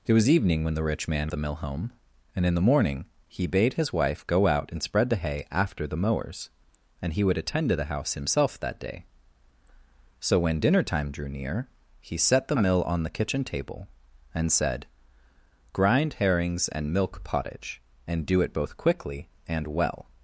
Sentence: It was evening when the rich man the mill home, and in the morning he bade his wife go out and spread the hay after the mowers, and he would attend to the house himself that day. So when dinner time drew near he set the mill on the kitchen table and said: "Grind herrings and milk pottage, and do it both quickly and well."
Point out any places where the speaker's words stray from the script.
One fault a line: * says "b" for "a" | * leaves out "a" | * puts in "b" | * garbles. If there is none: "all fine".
all fine